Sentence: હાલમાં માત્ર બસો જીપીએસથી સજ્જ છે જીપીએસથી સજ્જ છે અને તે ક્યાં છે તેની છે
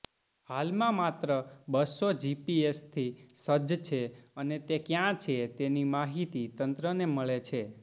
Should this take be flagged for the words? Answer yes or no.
yes